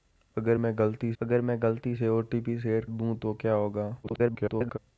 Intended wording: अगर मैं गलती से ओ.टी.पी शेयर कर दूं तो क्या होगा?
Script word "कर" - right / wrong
wrong